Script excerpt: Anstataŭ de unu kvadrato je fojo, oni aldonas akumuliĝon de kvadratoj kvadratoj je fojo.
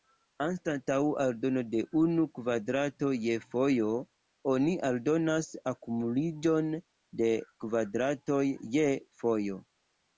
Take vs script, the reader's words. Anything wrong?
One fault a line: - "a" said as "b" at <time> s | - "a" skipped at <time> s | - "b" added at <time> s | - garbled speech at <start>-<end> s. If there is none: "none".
- "aldono" added at 1.2 s
- "kvadratoj" skipped at 8.4 s